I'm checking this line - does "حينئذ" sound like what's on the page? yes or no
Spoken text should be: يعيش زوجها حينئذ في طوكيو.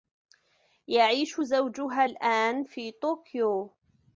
no